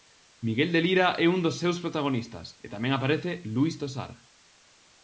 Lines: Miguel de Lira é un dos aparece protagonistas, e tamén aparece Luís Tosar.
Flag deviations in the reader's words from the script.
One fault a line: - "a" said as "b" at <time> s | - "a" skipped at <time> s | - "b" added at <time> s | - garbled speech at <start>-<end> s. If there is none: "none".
- "aparece" said as "seus" at 1.6 s